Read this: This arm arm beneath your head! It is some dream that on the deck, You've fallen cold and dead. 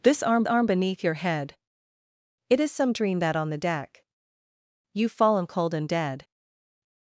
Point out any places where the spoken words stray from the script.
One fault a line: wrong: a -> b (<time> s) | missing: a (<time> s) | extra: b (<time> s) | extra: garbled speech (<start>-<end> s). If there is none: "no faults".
no faults